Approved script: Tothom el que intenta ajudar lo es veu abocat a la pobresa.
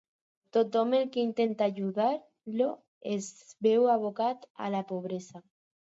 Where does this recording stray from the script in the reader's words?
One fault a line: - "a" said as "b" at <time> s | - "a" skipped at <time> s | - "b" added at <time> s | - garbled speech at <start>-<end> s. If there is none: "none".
none